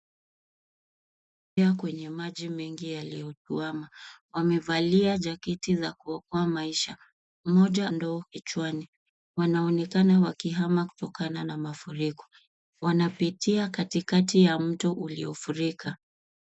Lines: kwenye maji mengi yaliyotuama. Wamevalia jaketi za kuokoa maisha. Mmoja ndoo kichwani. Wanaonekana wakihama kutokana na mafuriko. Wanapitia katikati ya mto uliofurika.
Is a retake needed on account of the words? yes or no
no